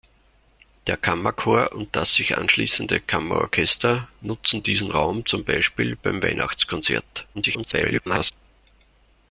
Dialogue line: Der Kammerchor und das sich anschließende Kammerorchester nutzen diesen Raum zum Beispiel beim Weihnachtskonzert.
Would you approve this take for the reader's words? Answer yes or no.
no